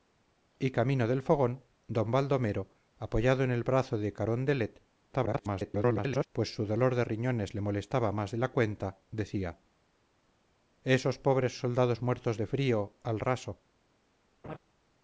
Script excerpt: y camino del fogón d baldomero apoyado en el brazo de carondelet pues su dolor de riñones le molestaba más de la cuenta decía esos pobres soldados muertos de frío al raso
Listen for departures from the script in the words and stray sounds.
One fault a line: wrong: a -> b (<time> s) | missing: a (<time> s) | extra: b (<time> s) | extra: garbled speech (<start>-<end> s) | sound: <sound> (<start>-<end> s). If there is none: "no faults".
extra: garbled speech (5.1-6.3 s)
sound: laugh (14.4-14.6 s)